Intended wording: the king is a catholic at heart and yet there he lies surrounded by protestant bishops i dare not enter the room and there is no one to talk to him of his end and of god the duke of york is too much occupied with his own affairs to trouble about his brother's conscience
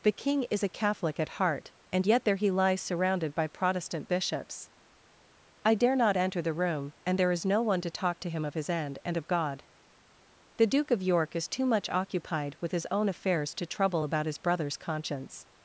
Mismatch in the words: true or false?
false